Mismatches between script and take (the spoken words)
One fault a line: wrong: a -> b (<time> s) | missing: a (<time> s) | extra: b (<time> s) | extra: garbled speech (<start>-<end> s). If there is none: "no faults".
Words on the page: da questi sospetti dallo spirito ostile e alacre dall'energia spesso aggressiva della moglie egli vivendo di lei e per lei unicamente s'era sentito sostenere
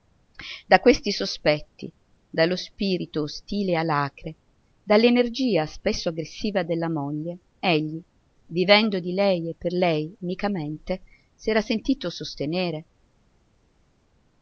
no faults